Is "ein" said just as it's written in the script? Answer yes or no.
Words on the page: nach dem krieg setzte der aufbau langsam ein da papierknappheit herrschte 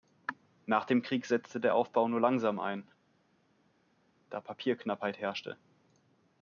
yes